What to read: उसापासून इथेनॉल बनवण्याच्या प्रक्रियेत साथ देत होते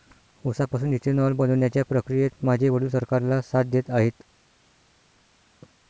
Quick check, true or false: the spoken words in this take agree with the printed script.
false